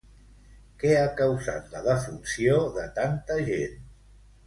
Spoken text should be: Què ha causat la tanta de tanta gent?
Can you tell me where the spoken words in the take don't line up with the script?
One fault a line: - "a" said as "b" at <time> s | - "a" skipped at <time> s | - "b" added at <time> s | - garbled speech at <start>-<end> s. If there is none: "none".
- "tanta" said as "defunció" at 1.9 s